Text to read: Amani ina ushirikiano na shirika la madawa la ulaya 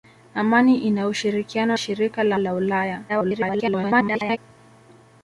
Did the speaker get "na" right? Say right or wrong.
wrong